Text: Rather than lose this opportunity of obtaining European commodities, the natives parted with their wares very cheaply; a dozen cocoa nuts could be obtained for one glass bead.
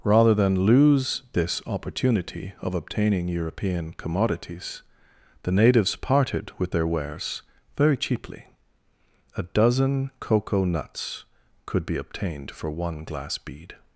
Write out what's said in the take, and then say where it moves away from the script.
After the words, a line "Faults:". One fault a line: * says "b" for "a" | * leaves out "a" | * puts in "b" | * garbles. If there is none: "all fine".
Rather than lose this opportunity of obtaining European commodities, the natives parted with their wares very cheaply; a dozen cocoa nuts could be obtained for one glass bead.
Faults:
all fine